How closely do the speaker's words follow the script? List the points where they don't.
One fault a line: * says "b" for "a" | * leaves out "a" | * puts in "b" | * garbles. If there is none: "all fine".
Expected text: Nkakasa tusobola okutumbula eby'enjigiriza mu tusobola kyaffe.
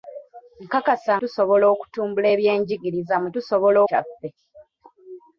all fine